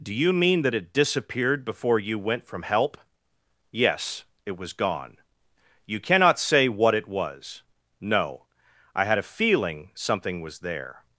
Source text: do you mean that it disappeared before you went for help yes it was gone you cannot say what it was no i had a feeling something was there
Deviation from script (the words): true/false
true